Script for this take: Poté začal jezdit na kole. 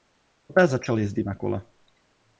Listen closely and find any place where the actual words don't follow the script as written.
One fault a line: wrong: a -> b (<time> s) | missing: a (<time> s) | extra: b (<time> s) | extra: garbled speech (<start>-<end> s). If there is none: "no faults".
no faults